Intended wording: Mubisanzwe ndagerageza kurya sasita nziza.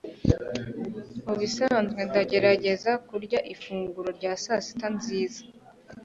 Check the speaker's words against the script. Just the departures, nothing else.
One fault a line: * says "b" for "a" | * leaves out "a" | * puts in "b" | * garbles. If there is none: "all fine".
* puts in "ifunguro rya"